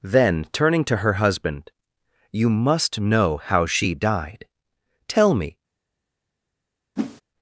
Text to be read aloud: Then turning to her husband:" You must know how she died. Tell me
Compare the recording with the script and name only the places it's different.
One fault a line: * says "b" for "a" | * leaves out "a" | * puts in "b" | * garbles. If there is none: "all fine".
all fine